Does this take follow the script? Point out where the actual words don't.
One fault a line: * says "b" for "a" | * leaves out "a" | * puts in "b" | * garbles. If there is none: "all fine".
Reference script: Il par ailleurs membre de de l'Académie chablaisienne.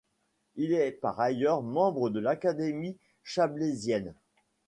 * puts in "est"
* leaves out "de"